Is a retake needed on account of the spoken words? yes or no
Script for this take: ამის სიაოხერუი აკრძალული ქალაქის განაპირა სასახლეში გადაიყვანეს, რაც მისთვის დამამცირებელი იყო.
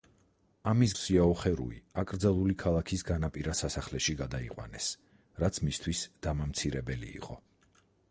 no